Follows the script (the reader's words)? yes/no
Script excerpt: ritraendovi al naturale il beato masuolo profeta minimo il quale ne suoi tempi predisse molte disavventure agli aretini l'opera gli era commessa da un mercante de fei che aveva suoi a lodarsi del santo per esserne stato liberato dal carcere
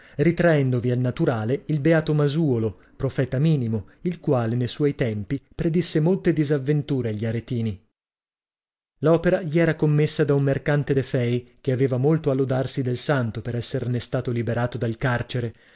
no